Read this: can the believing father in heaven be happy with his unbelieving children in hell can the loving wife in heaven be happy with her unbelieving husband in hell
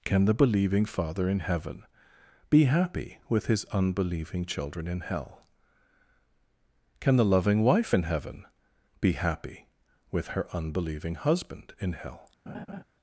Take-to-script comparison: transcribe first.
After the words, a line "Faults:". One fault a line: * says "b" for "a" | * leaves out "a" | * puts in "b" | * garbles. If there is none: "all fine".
can the believing father in heaven be happy with his unbelieving children in hell can the loving wife in heaven be happy with her unbelieving husband in hell
Faults:
all fine